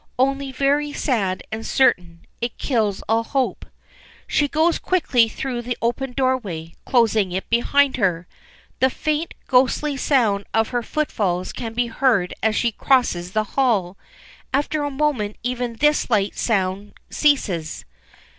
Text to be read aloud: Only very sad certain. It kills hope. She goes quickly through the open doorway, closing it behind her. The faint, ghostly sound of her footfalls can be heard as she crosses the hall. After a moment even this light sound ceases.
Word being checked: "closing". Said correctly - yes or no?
yes